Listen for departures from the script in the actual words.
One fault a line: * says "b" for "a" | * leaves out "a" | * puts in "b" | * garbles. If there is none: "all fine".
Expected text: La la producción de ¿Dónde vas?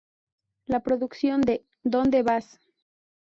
* leaves out "la"